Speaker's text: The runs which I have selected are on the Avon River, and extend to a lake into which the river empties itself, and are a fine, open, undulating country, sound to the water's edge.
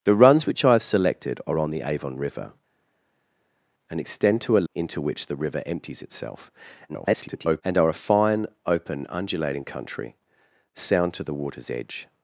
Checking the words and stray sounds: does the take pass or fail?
fail